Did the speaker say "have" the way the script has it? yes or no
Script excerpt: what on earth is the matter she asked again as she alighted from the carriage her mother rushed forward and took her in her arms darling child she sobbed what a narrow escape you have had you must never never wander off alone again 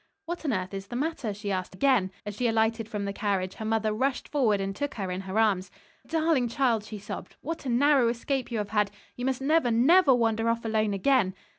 yes